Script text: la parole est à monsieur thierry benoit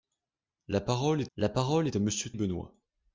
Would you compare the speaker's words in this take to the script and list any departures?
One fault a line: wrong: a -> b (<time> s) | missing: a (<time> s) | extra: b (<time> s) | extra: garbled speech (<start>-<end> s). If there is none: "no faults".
extra: la parole est (1.4 s)
missing: thierry (2.3 s)